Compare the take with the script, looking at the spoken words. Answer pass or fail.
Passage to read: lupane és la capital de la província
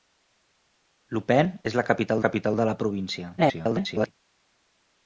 fail